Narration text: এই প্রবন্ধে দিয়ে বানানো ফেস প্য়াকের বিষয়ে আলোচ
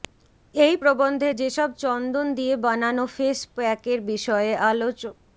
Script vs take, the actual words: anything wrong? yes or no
yes